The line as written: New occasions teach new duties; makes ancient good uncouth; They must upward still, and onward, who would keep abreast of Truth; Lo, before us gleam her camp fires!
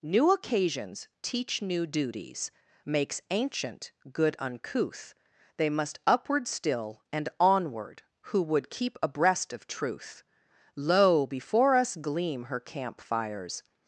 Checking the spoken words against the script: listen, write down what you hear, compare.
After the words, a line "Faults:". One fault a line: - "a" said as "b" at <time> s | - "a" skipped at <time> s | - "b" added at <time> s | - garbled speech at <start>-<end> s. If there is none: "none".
New occasions teach new duties; makes ancient good uncouth; They must upward still, and onward, who would keep abreast of Truth; Lo, before us gleam her camp fires!
Faults:
none